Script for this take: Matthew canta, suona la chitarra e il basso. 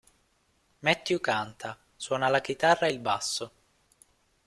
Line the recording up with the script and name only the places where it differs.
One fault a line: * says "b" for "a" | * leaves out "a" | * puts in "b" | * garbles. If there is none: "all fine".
all fine